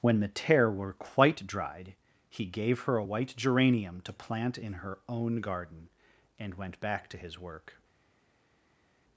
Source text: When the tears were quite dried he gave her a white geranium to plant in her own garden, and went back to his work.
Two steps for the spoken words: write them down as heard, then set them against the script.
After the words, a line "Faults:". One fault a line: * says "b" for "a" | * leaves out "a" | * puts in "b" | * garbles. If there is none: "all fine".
When the tear were quite dried he gave her a white geranium to plant in her own garden, and went back to his work.
Faults:
* says "tear" for "tears"